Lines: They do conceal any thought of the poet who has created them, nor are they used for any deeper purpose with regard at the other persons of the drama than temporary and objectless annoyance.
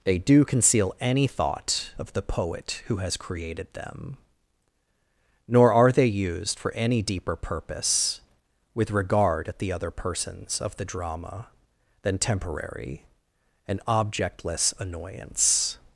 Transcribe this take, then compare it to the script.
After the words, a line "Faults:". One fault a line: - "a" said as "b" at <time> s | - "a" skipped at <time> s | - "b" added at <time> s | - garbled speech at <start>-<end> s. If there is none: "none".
They do conceal any thought of the poet who has created them, nor are they used for any deeper purpose with regard at the other persons of the drama than temporary and objectless annoyance.
Faults:
none